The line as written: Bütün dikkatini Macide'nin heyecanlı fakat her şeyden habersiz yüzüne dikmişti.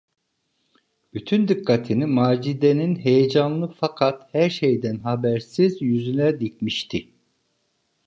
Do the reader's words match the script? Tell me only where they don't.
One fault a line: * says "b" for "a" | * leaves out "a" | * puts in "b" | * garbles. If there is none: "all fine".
all fine